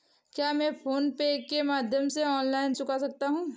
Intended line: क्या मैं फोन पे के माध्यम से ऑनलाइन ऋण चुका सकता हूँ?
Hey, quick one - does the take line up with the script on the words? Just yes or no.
no